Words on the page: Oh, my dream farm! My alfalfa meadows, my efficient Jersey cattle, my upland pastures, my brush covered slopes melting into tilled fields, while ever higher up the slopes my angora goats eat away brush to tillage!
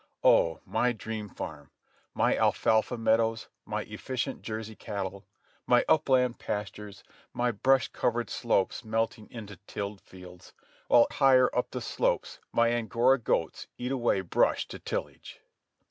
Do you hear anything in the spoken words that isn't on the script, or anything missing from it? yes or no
yes